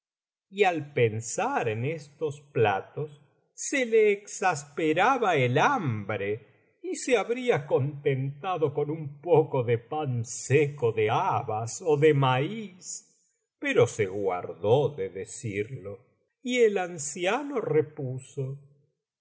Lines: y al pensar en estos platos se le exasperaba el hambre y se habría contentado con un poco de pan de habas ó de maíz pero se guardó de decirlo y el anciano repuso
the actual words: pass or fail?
fail